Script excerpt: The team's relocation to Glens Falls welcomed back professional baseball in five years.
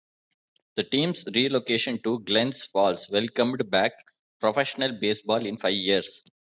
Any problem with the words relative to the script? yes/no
no